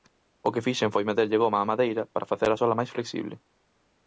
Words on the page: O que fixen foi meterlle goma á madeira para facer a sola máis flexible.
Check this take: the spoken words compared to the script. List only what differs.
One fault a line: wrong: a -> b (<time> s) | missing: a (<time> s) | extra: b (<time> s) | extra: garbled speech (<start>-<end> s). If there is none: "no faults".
no faults